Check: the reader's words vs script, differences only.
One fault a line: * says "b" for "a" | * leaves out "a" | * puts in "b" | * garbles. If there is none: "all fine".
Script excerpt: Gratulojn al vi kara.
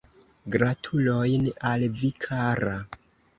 all fine